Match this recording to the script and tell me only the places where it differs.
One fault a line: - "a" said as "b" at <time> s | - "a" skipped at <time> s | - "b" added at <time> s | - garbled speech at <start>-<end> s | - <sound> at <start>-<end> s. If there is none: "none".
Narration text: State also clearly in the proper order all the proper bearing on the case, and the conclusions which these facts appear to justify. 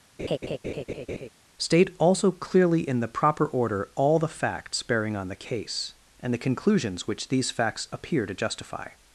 - laugh at 0.2-1.3 s
- "proper" said as "facts" at 4.3 s